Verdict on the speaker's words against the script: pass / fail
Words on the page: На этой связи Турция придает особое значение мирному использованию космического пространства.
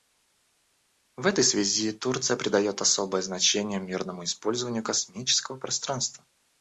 fail